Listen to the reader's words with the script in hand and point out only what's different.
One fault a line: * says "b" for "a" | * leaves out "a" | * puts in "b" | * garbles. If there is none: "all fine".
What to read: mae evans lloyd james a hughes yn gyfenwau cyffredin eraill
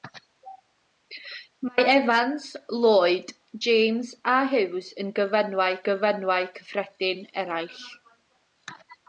* puts in "gyfenwau"